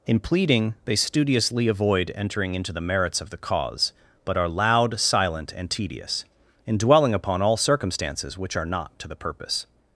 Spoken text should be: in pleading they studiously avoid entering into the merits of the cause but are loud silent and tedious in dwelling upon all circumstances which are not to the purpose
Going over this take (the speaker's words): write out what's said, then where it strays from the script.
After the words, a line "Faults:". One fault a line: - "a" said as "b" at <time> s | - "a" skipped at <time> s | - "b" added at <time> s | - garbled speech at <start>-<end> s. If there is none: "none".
in pleading they studiously avoid entering into the merits of the cause but are loud silent and tedious in dwelling upon all circumstances which are not to the purpose
Faults:
none